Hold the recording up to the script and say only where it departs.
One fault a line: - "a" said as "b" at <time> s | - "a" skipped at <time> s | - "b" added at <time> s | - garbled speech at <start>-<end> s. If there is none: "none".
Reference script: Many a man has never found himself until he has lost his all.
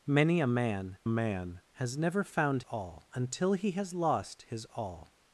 - "man" added at 1.1 s
- "himself" said as "all" at 2.7 s